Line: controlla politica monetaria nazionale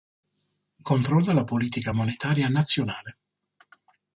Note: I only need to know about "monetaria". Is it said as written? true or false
true